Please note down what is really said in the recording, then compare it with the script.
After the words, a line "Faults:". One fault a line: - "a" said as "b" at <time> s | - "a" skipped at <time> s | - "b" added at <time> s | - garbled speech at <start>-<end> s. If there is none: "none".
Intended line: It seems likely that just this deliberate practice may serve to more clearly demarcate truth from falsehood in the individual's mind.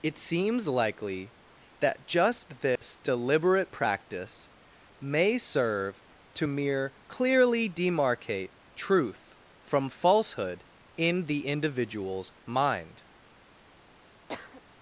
It seems likely that just this deliberate practice may serve to mere clearly demarcate truth from falsehood in the individual's mind.
Faults:
- "more" said as "mere" at 6.4 s